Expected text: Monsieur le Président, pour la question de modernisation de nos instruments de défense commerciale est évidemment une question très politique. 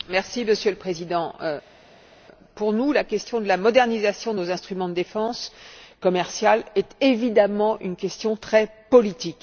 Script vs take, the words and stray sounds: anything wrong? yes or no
yes